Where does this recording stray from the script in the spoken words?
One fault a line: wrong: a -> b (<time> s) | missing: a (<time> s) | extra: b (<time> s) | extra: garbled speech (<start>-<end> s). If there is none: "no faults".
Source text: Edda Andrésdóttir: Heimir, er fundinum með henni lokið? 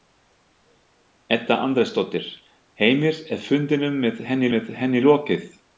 extra: með henni (4.6 s)